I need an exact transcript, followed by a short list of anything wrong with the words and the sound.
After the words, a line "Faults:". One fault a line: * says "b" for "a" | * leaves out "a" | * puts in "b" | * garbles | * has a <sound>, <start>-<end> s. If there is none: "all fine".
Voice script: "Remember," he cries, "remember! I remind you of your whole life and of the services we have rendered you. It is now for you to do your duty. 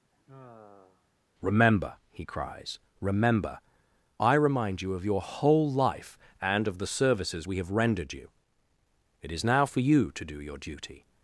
"Remember," he cries, "remember! I remind you of your whole life and of the services we have rendered you. It is now for you to do your duty.
Faults:
* has a sigh, 0.1-1.1 s